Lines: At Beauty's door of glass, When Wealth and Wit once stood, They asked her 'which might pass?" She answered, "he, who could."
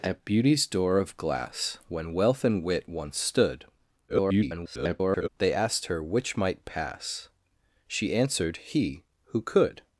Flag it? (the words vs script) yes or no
yes